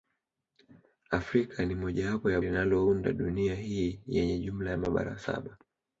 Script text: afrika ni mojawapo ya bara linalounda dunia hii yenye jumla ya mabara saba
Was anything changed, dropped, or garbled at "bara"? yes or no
yes